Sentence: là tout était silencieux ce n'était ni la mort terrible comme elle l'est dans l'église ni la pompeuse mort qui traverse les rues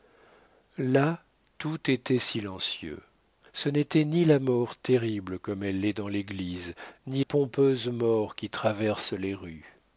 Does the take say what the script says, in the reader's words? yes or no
no